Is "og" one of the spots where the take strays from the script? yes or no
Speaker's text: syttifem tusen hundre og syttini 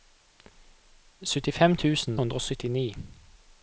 no